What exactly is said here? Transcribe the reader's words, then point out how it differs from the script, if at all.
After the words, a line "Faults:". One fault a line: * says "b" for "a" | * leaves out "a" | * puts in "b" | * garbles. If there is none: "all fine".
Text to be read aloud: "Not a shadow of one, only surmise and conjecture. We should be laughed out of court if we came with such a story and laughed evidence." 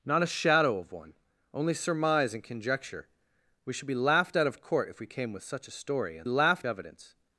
"Not a shadow of one, only surmise and conjecture. We should be laughed out of court if we came with such a story and laughed evidence."
Faults:
all fine